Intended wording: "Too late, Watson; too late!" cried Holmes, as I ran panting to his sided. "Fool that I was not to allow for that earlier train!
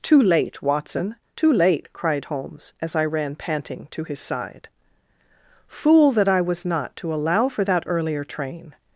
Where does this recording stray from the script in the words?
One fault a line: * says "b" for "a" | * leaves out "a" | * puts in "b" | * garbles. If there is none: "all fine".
* says "side" for "sided"